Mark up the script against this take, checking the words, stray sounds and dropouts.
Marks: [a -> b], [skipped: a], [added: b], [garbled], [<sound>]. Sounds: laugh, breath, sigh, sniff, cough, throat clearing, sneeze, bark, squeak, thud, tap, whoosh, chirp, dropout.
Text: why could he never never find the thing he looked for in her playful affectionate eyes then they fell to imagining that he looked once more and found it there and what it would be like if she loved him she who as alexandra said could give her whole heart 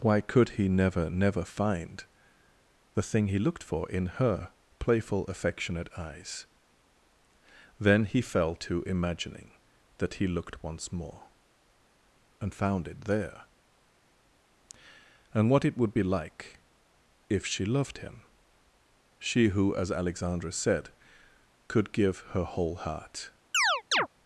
why could he never never find the thing he looked for in her playful affectionate eyes then [they -> he] fell to imagining that he looked once more and found it there and what it would be like if she loved him she who as alexandra said could give her whole heart [chirp]